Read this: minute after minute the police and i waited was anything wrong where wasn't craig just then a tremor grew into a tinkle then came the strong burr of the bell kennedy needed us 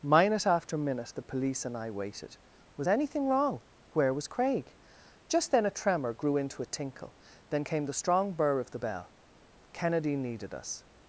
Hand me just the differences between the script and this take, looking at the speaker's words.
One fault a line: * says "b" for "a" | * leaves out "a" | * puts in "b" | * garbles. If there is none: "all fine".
* says "was" for "wasn't"